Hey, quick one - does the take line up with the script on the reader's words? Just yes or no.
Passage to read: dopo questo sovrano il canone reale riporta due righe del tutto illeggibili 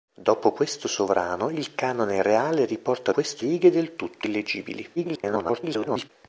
no